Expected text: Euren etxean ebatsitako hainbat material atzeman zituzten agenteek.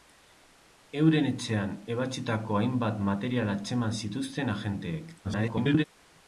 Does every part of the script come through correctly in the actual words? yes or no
no